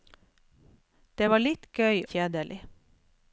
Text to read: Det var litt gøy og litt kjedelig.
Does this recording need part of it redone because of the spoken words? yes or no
yes